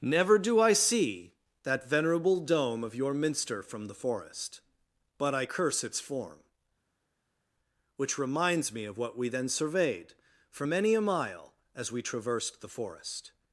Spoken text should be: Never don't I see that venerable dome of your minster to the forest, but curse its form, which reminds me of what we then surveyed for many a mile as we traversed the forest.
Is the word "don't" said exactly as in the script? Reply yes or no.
no